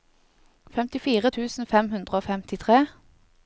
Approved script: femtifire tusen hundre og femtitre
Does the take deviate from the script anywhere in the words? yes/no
yes